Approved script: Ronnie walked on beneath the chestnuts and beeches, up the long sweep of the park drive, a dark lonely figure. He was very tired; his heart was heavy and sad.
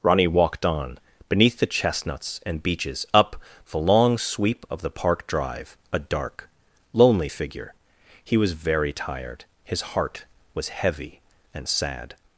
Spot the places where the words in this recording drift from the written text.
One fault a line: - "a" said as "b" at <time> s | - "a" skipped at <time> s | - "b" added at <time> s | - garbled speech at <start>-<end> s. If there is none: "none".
none